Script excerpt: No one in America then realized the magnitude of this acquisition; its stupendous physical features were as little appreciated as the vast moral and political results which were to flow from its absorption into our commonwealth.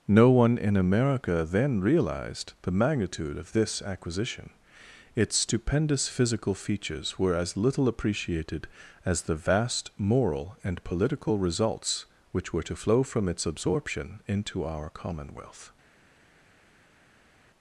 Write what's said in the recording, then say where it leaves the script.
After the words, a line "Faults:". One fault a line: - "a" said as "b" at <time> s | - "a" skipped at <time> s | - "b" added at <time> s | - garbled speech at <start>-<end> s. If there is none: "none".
No one in America then realized the magnitude of this acquisition; its stupendous physical features were as little appreciated as the vast moral and political results which were to flow from its absorption into our commonwealth.
Faults:
none